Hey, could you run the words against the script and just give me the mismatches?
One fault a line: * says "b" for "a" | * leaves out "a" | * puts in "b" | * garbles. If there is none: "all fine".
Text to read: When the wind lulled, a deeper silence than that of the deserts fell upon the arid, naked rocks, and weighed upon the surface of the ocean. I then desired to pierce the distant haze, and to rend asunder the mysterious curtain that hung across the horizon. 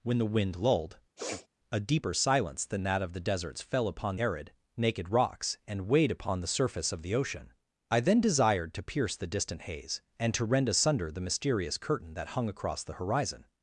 * leaves out "the"